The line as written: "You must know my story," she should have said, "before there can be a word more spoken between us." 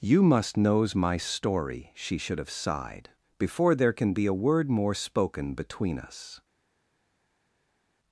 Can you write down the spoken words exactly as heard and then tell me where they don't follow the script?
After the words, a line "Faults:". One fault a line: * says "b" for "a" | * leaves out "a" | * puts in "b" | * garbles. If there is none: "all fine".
"You must knows my story," she should have sighed, "before there can be a word more spoken between us."
Faults:
* says "knows" for "know"
* says "sighed" for "said"